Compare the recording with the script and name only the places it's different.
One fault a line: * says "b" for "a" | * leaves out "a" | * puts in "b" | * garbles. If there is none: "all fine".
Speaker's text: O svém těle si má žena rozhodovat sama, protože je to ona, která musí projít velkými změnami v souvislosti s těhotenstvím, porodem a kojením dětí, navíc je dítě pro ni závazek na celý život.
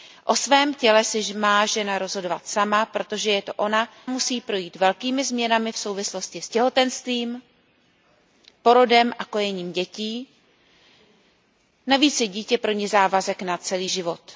* leaves out "která"